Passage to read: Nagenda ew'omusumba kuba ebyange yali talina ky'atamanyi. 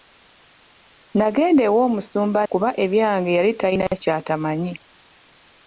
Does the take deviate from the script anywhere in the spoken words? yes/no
no